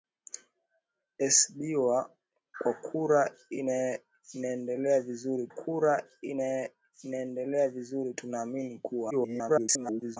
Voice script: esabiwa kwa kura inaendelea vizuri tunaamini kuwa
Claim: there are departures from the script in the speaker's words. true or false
true